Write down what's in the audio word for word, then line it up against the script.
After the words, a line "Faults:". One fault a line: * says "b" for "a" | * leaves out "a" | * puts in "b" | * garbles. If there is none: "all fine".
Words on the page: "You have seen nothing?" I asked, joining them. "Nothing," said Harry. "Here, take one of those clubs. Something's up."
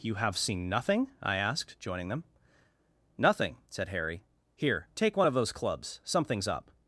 "You have seen nothing?" I asked, joining them. "Nothing," said Harry. "Here, take one of those clubs. Something's up."
Faults:
all fine